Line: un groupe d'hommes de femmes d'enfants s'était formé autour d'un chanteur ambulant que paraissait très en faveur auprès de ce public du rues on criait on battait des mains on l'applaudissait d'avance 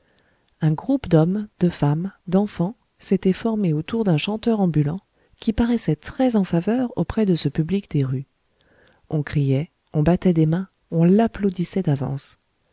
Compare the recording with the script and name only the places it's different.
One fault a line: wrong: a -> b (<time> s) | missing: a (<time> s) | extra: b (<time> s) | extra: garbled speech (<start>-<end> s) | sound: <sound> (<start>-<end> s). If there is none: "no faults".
wrong: que -> qui (5.4 s)
wrong: du -> des (7.9 s)